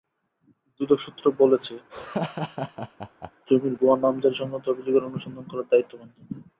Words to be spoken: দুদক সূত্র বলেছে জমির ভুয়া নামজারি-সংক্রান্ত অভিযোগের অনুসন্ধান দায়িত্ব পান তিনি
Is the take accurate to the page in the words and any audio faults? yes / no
no